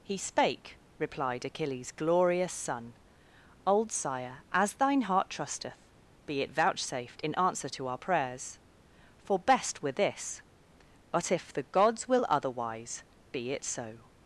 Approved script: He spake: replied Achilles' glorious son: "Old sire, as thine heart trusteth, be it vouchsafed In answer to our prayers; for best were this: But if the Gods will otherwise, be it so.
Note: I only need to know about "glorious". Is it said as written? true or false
true